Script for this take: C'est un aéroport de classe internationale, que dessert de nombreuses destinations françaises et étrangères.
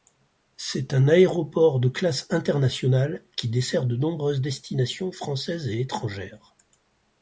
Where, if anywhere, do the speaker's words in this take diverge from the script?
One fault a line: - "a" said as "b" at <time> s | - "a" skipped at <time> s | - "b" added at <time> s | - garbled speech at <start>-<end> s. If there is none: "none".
- "que" said as "qui" at 3.4 s